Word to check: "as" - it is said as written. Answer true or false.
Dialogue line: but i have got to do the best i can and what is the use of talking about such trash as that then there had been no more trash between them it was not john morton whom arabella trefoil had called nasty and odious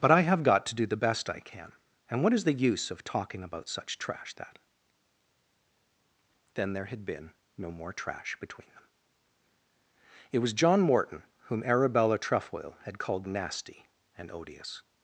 false